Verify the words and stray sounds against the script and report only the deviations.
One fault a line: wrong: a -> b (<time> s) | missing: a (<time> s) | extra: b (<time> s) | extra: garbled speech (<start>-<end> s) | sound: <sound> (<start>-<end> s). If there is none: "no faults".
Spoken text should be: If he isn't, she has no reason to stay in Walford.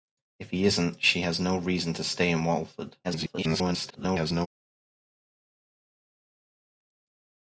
extra: garbled speech (3.0-4.5 s)